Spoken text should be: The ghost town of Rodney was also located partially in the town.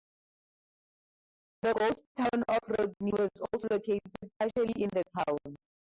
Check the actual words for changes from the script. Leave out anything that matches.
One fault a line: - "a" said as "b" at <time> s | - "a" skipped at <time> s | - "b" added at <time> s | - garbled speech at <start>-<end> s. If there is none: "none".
none